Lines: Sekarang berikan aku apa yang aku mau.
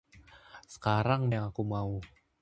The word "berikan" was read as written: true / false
false